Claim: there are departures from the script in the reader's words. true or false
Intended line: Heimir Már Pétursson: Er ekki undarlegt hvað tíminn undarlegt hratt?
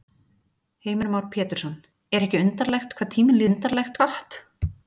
false